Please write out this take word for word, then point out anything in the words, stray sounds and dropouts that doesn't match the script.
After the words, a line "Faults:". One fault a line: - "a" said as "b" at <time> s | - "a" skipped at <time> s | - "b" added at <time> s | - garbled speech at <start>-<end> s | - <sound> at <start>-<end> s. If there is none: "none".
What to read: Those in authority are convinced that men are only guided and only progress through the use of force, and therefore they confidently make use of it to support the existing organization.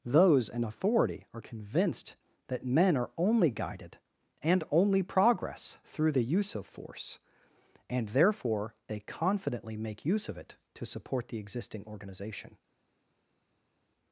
Those in authority are convinced that men are only guided and only progress through the use of force, and therefore they confidently make use of it to support the existing organization.
Faults:
none